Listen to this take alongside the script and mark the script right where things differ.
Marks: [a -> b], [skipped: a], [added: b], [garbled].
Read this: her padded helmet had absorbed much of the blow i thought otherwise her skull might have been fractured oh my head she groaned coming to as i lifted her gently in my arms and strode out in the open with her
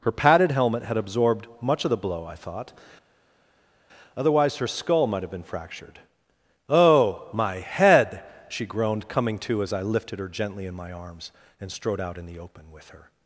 her padded helmet had absorbed much of the blow i thought otherwise her skull might have been fractured oh my head she groaned coming to as i lifted her gently in my arms and strode out in the open with her